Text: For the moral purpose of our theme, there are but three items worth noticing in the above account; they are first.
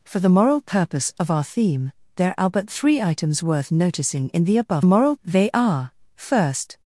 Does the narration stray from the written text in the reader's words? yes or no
yes